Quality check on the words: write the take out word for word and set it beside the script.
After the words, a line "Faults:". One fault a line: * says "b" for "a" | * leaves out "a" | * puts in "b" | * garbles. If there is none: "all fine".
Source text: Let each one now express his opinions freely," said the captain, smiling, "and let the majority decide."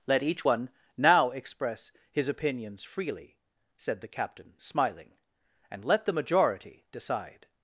Let each one now express his opinions freely," said the captain, smiling, "and let the majority decide."
Faults:
all fine